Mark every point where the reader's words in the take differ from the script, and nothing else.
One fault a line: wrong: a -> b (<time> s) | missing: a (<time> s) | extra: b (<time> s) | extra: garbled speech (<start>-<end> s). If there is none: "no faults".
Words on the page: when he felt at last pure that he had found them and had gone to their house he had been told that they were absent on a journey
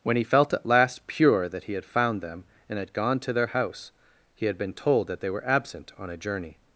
no faults